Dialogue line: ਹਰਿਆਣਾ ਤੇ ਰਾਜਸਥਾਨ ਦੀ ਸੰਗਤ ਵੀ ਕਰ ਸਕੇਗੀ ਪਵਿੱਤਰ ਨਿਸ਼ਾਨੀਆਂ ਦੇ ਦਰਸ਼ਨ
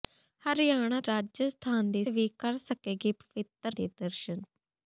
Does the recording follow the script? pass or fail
fail